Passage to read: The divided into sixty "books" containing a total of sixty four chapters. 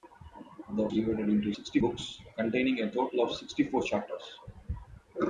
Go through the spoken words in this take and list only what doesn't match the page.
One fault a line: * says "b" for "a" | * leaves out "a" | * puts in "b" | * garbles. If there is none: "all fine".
all fine